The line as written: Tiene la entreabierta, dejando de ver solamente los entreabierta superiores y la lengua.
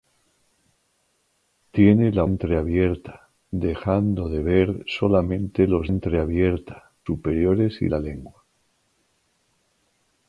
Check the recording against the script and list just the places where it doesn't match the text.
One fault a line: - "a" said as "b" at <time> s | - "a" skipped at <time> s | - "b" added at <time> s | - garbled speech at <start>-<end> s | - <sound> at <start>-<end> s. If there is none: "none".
none